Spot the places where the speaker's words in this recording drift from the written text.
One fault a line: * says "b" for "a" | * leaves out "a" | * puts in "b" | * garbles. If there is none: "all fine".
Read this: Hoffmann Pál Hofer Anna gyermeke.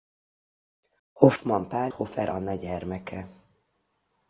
all fine